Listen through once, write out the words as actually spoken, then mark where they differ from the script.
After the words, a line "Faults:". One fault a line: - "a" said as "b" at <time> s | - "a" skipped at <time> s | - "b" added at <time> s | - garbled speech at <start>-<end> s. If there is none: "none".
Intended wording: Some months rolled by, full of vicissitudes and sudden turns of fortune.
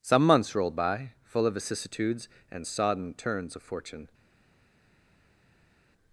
Some months rolled by, full of vicissitudes and sodden turns of fortune.
Faults:
- "sudden" said as "sodden" at 2.7 s